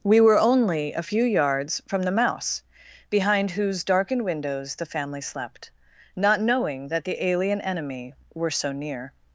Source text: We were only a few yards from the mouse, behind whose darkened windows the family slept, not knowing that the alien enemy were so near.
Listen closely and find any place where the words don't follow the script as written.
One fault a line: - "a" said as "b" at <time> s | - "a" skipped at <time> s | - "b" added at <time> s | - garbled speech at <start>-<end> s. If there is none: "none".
none